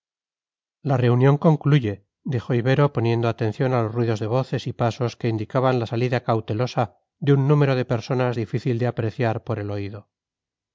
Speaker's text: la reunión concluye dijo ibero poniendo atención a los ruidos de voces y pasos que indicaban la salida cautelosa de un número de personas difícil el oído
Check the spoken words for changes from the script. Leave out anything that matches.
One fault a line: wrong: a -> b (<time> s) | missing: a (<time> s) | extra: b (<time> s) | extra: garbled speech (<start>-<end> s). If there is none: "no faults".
extra: de apreciar por (8.8 s)